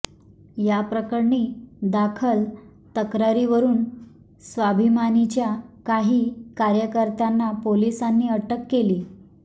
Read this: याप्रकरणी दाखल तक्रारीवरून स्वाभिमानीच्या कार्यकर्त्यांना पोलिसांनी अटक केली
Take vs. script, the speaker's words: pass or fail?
fail